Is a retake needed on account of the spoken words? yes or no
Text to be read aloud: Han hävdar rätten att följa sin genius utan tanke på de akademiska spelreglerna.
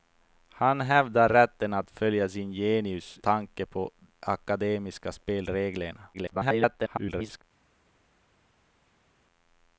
yes